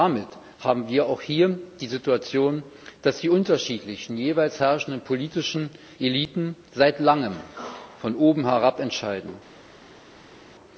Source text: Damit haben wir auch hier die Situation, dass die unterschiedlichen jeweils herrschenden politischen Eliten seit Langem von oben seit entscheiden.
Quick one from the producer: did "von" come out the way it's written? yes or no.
yes